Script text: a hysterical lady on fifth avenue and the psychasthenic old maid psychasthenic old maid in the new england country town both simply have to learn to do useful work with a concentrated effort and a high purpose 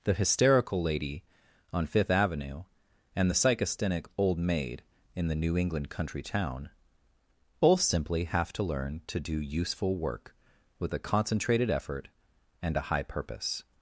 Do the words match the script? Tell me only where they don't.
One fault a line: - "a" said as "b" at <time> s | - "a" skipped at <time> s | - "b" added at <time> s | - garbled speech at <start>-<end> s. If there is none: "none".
- "a" said as "the" at 0.0 s
- "psychasthenic old maid" skipped at 4.8 s